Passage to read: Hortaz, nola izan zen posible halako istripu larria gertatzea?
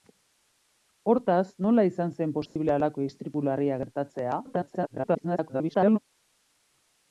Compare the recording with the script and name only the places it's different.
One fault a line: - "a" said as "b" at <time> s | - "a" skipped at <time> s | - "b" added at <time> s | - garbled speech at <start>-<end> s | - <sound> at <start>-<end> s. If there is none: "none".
- dropout at 2.5-2.6 s
- garbled speech at 4.4-6.0 s